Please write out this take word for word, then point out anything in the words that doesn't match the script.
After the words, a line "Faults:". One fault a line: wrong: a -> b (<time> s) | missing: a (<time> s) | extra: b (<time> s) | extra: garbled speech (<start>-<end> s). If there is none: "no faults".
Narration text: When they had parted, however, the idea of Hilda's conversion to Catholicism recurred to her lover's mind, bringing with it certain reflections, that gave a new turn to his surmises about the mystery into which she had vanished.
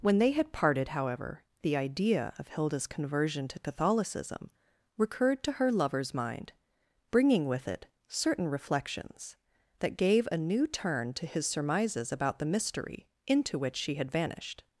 When they had parted, however, the idea of Hilda's conversion to Catholicism recurred to her lover's mind, bringing with it certain reflections, that gave a new turn to his surmises about the mystery into which she had vanished.
Faults:
no faults